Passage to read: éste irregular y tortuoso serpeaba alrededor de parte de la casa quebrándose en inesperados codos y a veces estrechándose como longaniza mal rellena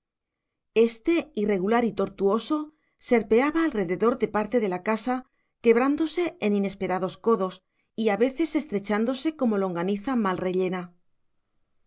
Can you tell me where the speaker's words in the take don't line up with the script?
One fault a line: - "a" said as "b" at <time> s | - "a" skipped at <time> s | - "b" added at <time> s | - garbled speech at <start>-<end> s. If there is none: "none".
none